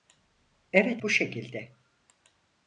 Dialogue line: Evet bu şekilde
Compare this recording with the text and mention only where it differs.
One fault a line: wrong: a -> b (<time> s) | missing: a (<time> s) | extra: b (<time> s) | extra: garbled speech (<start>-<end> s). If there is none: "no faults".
no faults